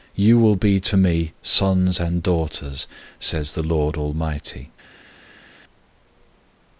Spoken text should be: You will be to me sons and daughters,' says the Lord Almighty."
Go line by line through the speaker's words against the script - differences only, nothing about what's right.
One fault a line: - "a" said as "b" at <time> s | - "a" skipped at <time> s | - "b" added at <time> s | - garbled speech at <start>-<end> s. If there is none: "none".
none